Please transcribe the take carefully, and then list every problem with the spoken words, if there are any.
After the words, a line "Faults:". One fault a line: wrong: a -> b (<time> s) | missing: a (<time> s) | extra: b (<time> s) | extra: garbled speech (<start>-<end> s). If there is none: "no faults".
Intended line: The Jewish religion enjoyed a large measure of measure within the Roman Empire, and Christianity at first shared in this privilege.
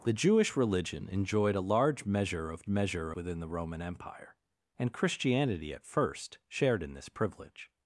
The Jewish religion enjoyed a large measure of measure within the Roman Empire, and Christianity at first shared in this privilege.
Faults:
no faults